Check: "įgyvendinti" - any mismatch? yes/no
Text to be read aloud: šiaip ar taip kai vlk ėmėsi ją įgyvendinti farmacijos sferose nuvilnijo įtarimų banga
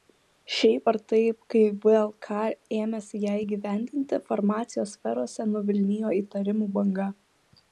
no